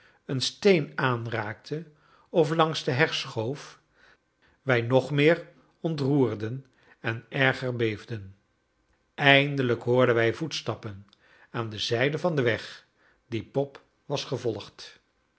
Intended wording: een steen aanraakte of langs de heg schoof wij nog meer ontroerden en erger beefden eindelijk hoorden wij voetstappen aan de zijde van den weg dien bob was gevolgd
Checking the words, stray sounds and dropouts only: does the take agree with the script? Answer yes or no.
yes